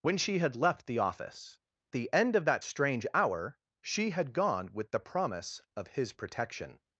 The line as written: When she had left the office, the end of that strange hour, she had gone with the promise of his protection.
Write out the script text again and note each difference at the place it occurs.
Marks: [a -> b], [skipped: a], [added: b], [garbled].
When she had left the office, the end of that strange hour, she had gone with the promise of his protection.